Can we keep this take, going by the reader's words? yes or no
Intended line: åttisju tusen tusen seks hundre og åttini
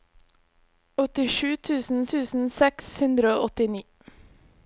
yes